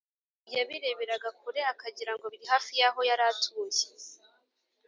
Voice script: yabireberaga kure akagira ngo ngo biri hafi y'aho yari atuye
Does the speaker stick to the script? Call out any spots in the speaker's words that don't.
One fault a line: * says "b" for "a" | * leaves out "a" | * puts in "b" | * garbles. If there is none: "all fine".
* leaves out "ngo"